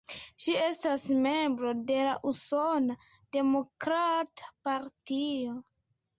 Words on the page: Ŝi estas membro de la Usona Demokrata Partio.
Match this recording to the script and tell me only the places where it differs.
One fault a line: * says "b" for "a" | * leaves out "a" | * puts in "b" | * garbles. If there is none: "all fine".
all fine